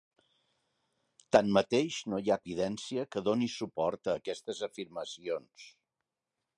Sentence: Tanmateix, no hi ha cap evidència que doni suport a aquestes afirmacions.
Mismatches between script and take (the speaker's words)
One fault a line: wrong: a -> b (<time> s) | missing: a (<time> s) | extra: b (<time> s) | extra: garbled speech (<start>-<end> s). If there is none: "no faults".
missing: cap (2.4 s)